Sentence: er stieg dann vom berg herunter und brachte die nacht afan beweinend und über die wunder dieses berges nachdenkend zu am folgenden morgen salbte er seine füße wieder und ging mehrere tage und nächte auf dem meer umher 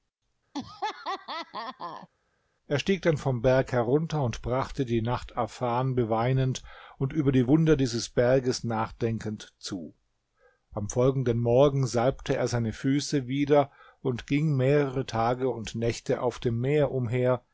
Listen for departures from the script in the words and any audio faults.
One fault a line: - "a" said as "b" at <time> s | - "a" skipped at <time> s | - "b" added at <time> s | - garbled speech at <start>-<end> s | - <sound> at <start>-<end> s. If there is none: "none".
- laugh at 0.5-2.1 s